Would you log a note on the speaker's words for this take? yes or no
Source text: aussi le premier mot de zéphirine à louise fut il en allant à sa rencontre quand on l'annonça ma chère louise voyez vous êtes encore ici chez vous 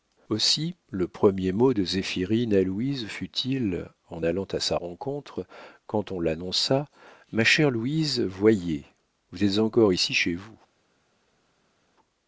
no